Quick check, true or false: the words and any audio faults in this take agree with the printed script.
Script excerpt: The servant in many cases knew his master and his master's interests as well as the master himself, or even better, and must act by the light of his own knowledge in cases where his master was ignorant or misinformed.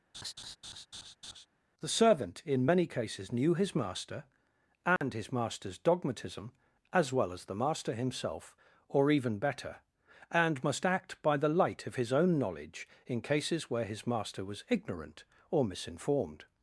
false